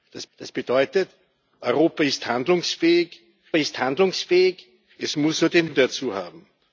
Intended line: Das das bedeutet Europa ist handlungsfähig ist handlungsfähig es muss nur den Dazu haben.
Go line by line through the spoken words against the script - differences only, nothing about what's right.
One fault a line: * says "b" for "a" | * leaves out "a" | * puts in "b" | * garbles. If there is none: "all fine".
all fine